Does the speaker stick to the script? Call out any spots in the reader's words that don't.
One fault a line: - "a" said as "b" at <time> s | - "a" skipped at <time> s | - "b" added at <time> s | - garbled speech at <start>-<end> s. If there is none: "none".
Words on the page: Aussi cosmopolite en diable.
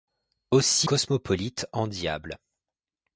none